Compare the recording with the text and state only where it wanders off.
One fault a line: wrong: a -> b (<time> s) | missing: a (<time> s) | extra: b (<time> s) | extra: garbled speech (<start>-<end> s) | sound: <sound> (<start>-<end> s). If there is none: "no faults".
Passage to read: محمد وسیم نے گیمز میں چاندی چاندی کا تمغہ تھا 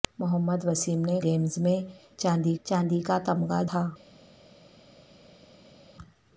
no faults